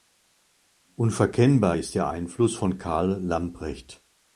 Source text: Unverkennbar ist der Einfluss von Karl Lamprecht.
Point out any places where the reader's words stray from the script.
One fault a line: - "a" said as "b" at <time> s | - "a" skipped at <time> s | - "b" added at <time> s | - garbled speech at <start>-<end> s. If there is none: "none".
none